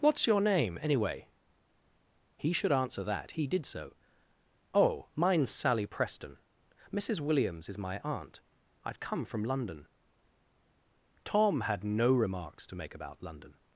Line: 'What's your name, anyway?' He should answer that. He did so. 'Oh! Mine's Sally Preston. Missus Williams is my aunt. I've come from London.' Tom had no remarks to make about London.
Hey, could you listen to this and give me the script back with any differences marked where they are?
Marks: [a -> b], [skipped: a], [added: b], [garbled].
'What's your name, anyway?' He should answer that. He did so. 'Oh! Mine's Sally Preston. Missus Williams is my aunt. I've come from London.' Tom had no remarks to make about London.